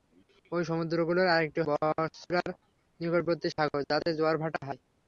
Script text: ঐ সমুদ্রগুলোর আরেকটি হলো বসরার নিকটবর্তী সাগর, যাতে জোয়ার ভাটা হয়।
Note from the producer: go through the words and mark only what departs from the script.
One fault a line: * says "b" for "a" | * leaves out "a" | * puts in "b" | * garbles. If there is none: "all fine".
* leaves out "হলো"